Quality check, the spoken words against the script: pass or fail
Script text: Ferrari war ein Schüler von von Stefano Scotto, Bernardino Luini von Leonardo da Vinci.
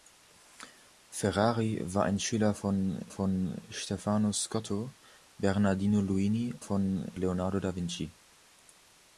pass